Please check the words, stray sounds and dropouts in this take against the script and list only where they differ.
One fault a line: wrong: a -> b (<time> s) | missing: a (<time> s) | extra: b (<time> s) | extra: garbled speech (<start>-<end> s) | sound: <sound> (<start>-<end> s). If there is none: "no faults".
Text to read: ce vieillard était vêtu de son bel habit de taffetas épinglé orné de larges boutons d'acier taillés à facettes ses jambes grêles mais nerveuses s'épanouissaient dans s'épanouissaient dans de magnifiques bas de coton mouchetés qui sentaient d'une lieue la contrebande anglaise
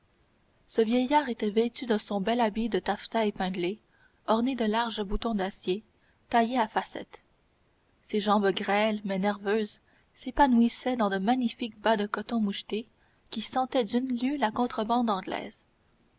missing: s'épanouissaient dans (11.1 s)